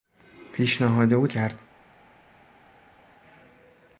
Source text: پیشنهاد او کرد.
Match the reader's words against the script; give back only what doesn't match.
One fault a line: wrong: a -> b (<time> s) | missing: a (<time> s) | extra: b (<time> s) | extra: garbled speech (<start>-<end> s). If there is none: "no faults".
no faults